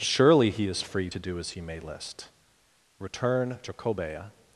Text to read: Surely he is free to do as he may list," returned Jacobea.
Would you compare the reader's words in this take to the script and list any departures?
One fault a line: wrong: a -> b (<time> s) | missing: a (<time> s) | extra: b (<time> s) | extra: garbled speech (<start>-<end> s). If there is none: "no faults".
wrong: returned -> return (3.0 s)